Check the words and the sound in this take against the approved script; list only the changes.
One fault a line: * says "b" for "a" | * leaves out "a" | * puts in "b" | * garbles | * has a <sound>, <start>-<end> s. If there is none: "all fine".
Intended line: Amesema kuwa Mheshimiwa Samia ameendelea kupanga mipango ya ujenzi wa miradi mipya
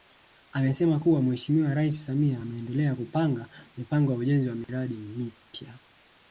* puts in "Rais"
* has a dropout, 4.6-4.7 s